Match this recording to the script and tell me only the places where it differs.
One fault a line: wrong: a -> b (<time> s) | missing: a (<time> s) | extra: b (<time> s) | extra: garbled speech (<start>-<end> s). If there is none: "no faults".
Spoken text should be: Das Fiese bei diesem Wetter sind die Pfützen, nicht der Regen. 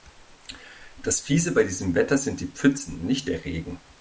no faults